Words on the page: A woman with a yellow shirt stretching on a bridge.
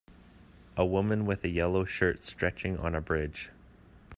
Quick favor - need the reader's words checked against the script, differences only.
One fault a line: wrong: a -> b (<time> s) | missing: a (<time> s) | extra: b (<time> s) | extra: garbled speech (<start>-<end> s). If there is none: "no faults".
no faults